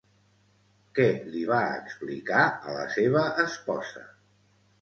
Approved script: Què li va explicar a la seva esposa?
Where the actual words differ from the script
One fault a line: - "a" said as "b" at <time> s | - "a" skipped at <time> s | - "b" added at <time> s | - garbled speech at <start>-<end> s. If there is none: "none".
none